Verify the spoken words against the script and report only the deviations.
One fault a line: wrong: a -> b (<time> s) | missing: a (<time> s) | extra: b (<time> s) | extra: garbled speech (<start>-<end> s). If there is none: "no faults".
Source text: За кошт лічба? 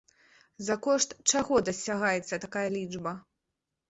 extra: чаго дасягаецца такая (1.3 s)